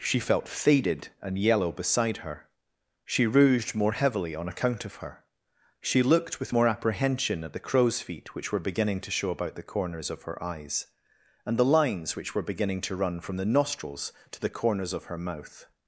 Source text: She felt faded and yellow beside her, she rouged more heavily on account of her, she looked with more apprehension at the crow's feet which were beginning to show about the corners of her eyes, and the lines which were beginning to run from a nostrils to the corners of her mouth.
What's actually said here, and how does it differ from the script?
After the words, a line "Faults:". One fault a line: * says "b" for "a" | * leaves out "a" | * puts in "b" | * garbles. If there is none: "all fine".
She felt faded and yellow beside her, she rouged more heavily on account of her, she looked with more apprehension at the crow's feet which were beginning to show about the corners of her eyes, and the lines which were beginning to run from the nostrils to the corners of her mouth.
Faults:
* says "the" for "a"